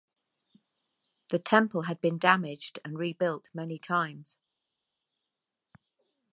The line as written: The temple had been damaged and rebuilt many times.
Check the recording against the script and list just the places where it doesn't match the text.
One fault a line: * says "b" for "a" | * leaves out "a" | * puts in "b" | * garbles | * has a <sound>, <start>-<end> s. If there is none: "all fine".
all fine